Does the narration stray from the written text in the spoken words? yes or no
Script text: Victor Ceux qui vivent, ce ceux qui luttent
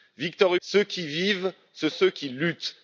no